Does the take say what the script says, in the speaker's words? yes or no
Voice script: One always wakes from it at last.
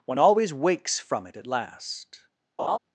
yes